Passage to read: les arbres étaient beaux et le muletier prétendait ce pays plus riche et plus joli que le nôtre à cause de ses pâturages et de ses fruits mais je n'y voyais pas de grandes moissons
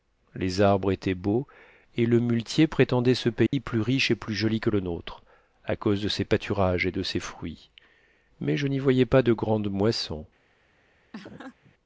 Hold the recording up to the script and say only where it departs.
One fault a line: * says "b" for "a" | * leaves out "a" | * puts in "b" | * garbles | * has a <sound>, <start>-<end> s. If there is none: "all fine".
* has a dropout, 3.5-3.5 s
* has a laugh, 11.1-11.7 s